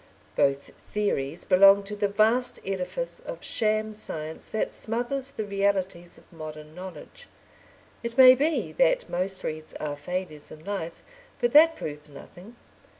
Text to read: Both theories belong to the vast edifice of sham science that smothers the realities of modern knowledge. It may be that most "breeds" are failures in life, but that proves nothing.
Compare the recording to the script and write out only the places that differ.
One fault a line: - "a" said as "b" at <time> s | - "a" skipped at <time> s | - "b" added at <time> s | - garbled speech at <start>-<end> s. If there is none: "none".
none